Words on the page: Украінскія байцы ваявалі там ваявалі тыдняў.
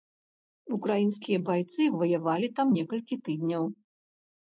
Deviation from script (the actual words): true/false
true